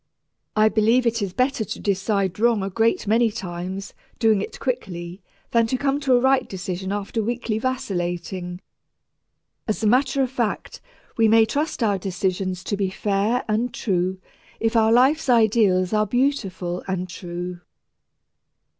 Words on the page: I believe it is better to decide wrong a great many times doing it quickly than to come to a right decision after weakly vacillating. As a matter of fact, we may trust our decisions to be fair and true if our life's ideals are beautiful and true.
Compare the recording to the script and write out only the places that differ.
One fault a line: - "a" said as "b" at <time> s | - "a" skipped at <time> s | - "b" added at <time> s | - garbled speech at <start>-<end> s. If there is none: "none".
none